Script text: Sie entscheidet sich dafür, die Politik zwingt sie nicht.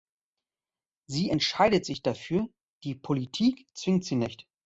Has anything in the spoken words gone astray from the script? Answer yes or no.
no